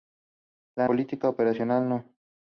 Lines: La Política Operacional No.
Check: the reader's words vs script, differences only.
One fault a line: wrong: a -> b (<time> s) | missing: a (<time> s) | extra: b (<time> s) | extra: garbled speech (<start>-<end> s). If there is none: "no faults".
no faults